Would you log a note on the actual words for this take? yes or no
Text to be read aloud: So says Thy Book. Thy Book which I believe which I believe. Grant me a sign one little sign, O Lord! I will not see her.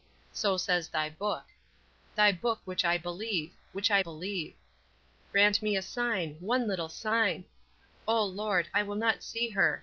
no